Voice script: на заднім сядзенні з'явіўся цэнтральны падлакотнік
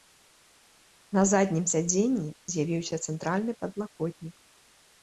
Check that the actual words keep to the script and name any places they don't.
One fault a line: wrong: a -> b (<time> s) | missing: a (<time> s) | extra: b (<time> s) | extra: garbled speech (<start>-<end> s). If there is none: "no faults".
no faults